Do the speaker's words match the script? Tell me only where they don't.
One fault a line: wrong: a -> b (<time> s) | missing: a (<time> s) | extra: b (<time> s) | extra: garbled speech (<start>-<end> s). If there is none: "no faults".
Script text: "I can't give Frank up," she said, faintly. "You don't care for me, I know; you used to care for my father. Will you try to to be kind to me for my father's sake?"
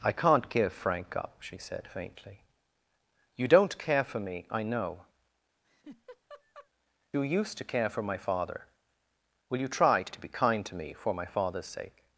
no faults